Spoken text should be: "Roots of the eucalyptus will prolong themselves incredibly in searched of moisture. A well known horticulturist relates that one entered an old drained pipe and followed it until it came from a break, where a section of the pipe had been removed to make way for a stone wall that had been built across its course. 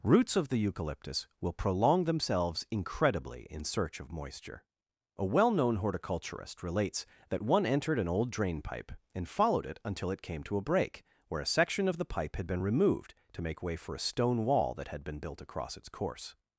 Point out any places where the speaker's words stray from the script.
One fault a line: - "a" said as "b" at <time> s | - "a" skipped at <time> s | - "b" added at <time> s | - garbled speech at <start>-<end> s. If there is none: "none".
- "searched" said as "search" at 3.6 s
- "drained" said as "drain" at 8.3 s
- "from" said as "to" at 10.4 s